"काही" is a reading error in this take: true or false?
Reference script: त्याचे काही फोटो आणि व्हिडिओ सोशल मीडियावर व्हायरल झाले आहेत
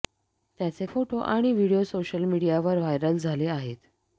true